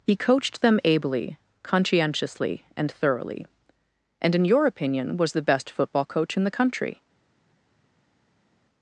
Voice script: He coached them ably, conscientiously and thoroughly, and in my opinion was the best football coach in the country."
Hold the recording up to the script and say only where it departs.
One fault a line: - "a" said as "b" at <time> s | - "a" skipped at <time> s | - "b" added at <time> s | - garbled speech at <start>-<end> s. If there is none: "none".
- "my" said as "your" at 4.5 s